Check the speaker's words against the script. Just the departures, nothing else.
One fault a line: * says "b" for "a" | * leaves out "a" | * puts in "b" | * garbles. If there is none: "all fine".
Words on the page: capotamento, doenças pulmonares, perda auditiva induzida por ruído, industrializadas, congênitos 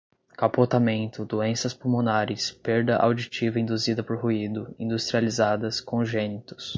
all fine